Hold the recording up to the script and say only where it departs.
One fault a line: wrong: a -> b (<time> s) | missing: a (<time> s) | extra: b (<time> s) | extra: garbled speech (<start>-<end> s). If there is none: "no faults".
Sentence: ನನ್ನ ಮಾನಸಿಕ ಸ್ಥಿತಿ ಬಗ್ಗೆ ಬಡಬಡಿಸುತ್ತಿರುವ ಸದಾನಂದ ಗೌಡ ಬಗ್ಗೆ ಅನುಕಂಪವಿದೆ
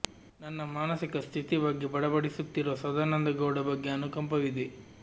no faults